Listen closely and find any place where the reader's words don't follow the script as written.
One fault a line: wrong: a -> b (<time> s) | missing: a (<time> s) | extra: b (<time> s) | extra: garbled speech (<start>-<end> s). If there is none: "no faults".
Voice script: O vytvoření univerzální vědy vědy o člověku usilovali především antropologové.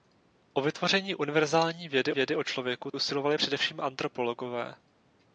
no faults